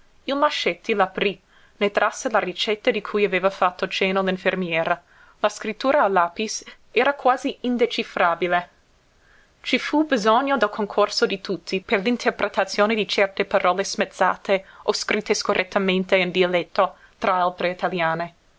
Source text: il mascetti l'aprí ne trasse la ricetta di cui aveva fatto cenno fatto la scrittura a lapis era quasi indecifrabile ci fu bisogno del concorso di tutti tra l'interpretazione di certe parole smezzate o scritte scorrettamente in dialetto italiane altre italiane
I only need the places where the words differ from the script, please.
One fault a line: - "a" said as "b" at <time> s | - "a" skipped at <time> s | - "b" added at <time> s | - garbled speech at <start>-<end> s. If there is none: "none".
- "fatto" said as "l'infermiera" at 4.2 s
- "tra" said as "per" at 11.8 s
- "italiane" said as "tra" at 17.2 s